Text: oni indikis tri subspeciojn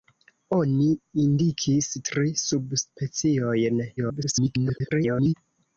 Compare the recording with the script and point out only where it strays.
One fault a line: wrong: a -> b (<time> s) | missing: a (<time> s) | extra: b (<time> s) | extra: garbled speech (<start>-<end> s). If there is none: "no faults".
extra: garbled speech (4.0-5.3 s)